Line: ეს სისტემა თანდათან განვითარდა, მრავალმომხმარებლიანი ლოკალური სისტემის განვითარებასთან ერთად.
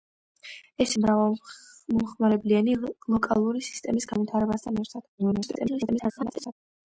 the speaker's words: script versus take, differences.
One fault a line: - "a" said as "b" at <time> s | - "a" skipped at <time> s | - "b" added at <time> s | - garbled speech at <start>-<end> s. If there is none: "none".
- "სისტემა თანდათან განვითარდა" skipped at 0.9 s
- garbled speech at 5.2-6.5 s